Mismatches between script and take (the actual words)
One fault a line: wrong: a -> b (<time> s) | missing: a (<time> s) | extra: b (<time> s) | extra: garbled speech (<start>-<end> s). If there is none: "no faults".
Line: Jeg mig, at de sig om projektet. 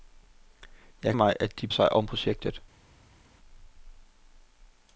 no faults